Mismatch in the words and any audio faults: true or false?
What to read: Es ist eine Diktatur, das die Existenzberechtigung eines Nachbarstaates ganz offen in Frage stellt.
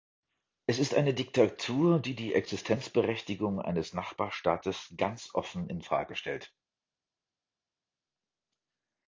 true